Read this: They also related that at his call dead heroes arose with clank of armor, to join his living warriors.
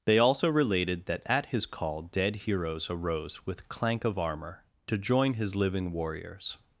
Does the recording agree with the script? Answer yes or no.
yes